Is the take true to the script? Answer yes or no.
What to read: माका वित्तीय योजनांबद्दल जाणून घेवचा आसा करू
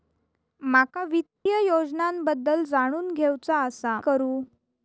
yes